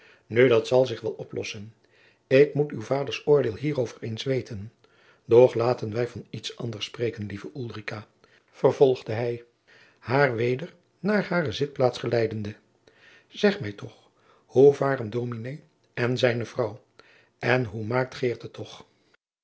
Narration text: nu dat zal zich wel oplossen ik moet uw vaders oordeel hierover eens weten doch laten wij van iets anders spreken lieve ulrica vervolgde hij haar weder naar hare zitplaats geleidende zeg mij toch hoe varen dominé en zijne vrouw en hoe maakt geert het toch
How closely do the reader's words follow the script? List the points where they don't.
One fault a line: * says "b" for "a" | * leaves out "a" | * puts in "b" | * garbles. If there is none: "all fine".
all fine